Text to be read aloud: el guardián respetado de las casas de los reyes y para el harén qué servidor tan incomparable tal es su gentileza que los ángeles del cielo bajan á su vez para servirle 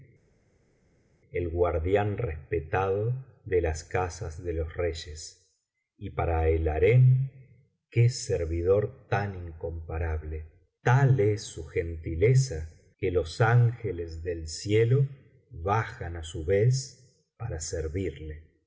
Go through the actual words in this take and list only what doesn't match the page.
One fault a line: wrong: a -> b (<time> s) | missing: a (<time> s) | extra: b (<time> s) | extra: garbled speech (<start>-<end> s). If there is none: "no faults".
no faults